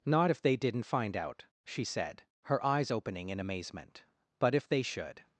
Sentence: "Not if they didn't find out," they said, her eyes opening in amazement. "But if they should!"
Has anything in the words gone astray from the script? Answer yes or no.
yes